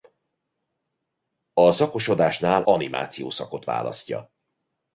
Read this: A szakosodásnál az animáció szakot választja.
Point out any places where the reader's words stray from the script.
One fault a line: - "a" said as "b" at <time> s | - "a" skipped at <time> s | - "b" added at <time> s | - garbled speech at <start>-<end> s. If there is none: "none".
- "az" skipped at 2.6 s